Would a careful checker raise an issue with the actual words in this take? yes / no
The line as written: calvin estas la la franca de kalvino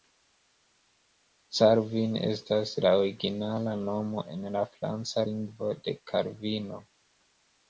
yes